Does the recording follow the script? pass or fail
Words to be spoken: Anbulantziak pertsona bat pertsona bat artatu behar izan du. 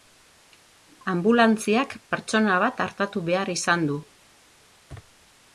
fail